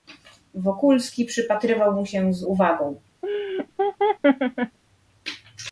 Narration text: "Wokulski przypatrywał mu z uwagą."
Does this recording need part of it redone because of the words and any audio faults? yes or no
yes